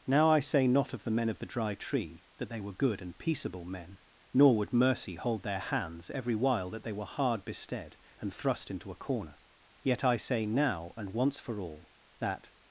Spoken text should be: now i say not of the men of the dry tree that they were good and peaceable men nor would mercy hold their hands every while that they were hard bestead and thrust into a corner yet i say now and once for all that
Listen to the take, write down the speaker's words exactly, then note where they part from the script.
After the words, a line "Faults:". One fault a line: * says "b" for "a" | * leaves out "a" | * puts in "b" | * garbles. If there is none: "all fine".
now i say not of the men of the dry tree that they were good and peaceable men nor would mercy hold their hands every while that they were hard bestead and thrust into a corner yet i say now and once for all that
Faults:
all fine